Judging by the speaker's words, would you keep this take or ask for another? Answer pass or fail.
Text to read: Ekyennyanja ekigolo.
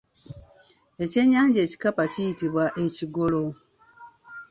fail